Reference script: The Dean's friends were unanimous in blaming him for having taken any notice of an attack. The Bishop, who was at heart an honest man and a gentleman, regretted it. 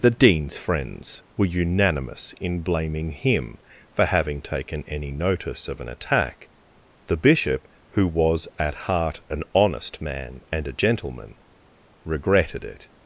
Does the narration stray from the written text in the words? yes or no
no